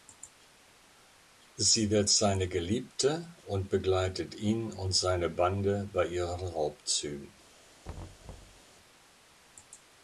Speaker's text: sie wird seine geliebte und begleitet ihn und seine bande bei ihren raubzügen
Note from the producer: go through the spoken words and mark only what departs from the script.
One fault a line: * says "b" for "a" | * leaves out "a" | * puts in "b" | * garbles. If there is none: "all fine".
all fine